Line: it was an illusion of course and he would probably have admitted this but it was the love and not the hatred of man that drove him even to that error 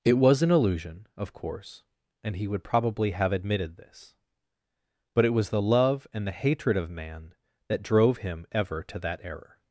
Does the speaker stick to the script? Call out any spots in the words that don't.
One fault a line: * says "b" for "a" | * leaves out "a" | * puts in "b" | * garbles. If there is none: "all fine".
* leaves out "not"
* says "ever" for "even"